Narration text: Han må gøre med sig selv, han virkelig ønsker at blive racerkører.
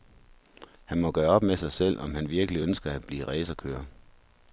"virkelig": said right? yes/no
yes